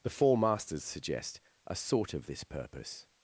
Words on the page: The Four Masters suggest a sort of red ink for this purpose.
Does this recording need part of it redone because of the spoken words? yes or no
yes